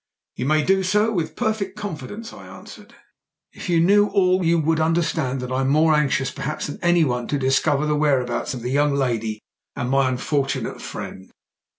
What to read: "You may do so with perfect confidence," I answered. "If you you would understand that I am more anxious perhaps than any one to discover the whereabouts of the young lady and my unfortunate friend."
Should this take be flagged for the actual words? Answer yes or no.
yes